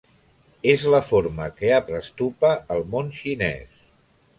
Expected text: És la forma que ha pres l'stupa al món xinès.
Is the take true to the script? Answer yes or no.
no